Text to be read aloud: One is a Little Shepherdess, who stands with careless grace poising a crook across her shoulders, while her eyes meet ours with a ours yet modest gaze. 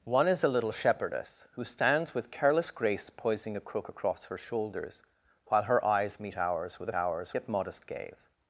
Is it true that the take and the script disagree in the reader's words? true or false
false